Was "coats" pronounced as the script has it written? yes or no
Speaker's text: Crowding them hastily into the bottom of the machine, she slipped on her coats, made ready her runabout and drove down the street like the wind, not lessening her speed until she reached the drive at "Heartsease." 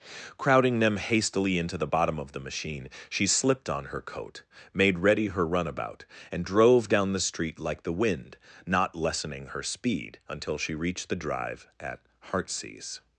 no